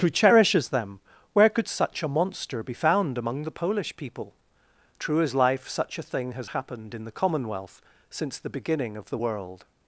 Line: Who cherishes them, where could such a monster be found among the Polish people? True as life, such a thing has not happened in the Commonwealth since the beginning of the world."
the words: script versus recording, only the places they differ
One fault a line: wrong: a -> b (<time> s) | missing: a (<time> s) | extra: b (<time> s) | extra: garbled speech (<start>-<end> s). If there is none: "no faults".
missing: not (6.5 s)